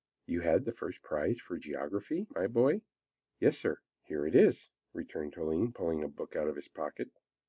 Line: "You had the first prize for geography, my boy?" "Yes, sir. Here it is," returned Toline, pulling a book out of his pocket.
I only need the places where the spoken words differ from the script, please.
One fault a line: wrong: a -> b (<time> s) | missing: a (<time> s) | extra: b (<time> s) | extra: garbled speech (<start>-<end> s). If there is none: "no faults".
no faults